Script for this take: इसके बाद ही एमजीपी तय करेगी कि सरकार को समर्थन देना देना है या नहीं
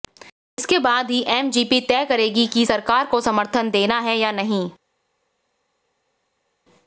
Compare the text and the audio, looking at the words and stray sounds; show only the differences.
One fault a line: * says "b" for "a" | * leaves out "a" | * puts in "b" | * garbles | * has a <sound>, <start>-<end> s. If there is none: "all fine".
* leaves out "देना"